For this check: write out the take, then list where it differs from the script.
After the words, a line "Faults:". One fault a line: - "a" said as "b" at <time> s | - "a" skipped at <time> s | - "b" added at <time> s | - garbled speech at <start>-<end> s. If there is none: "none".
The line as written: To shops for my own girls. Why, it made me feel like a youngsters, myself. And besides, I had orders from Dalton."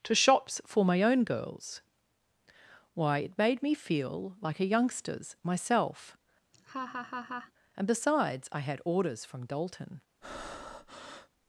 To shops for my own girls. Why, it made me feel like a youngsters, myself. And besides, I had orders from Dalton."
Faults:
none